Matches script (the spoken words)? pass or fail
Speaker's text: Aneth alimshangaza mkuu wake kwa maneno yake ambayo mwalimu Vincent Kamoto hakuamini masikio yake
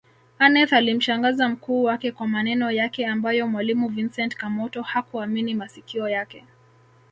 pass